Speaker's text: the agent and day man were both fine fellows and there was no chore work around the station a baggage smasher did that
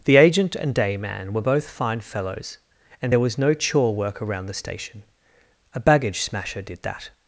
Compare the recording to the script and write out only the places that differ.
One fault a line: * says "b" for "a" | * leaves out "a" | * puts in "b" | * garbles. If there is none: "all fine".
all fine